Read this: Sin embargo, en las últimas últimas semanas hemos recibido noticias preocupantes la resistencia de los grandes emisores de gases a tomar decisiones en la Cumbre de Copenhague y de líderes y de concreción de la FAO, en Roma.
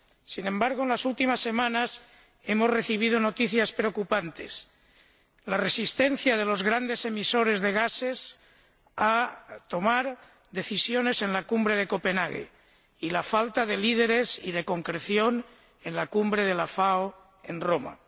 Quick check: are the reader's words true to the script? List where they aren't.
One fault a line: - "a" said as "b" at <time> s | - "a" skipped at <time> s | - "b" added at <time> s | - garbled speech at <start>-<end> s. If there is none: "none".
- "últimas" skipped at 1.4 s
- "la falta" added at 13.1 s
- "en la Cumbre" added at 15.8 s